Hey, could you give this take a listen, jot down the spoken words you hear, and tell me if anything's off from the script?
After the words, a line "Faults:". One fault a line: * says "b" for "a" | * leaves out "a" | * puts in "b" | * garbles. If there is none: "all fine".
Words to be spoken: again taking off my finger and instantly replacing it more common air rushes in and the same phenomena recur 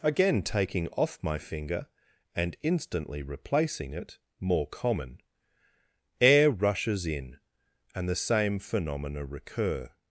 again taking off my finger and instantly replacing it more common air rushes in and the same phenomena recur
Faults:
all fine